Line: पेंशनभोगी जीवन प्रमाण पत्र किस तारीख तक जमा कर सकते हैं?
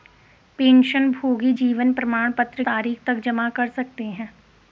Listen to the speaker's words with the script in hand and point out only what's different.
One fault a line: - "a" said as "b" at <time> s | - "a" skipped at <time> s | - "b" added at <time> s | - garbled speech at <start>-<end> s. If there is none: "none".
- "किस" skipped at 2.6 s